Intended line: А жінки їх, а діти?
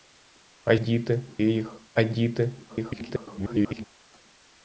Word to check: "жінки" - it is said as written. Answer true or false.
false